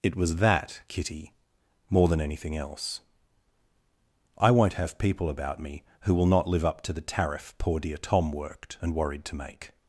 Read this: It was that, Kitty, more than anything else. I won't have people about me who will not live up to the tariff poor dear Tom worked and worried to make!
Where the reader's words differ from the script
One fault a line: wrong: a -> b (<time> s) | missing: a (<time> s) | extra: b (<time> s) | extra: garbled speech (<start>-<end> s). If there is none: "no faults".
no faults